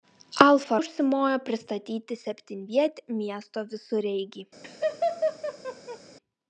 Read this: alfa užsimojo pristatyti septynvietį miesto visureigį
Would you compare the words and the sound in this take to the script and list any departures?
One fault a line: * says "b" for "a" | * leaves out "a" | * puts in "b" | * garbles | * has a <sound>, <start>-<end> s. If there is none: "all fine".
* has a laugh, 4.6-6.0 s